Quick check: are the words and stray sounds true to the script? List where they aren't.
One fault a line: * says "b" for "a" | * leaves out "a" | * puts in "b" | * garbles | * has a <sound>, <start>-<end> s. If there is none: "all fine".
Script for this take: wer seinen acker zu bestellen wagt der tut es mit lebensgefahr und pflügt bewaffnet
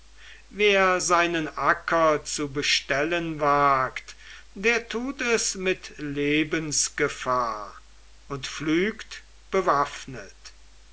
all fine